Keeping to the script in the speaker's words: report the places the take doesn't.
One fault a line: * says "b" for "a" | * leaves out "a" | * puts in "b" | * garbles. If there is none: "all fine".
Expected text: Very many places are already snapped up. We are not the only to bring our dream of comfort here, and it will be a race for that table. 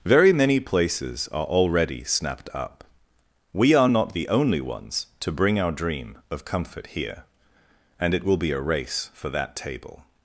* puts in "ones"